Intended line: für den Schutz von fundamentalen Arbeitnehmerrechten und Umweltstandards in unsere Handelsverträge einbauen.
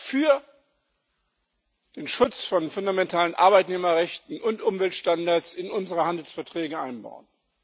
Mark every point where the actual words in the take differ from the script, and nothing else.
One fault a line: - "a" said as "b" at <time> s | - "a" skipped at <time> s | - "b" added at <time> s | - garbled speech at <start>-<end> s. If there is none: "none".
none